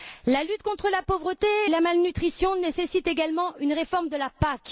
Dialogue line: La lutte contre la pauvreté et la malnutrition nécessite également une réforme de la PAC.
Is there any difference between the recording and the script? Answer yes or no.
yes